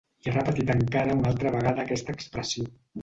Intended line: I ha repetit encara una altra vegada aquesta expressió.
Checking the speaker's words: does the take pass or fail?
pass